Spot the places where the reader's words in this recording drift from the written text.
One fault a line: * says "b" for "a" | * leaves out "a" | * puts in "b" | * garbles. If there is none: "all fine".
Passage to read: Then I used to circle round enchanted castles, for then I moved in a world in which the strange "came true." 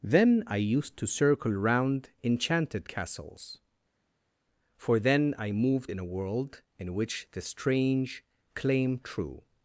* says "claim" for "came"